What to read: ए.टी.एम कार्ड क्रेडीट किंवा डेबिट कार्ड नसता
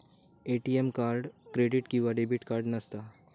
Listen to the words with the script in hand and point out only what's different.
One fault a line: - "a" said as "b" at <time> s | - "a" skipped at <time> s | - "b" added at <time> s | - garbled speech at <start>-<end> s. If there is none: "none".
none